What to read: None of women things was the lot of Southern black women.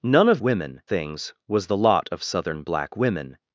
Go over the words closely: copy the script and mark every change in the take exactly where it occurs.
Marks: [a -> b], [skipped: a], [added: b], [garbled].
None of women things was the lot of Southern black women.